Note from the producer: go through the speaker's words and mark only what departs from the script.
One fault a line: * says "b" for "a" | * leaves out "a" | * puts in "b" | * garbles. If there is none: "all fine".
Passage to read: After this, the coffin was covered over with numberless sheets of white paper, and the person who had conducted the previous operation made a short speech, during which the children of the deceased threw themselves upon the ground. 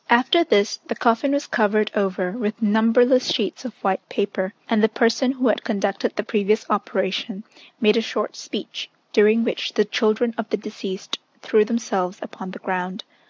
all fine